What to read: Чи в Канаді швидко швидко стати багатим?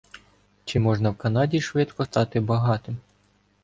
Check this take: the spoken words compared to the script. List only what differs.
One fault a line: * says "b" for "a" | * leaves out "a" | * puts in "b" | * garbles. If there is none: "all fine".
* puts in "можна"
* leaves out "швидко"